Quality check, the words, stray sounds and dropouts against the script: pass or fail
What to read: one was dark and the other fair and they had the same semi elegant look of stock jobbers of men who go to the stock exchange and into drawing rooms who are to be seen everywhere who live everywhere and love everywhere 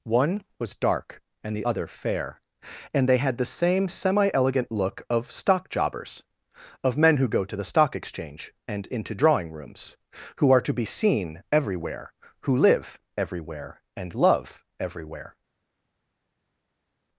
pass